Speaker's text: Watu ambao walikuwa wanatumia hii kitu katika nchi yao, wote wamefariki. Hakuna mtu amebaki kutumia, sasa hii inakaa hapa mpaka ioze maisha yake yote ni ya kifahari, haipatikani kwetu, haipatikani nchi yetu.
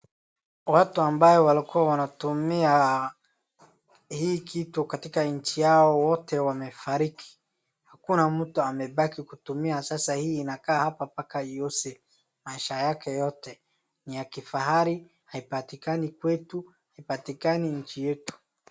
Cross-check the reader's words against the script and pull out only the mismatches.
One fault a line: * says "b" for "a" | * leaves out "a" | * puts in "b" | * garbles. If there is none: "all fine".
all fine